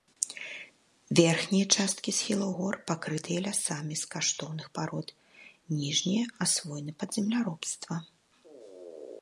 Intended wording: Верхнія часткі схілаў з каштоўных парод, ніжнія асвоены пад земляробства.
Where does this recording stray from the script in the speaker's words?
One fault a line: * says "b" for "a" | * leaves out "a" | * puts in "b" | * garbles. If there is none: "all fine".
* puts in "гор пакрытыя лясамі"